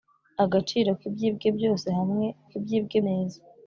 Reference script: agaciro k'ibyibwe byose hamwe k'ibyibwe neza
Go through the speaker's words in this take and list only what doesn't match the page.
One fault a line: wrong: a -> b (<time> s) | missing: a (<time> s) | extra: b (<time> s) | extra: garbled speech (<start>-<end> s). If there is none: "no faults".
no faults